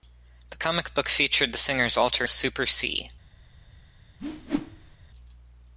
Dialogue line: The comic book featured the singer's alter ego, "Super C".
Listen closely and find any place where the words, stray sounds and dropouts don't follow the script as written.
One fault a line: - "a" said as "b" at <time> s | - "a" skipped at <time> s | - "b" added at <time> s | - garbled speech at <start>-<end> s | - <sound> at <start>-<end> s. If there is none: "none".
- "ego" skipped at 2.3 s
- whoosh at 4.2-5.0 s